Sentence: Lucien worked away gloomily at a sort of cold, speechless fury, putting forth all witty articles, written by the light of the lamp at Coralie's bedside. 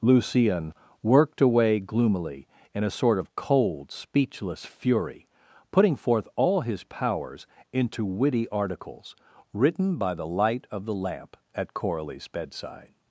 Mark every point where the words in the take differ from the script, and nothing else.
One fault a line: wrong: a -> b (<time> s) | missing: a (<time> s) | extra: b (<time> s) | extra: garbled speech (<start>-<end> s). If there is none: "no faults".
wrong: at -> in (2.7 s)
extra: his powers into (6.6 s)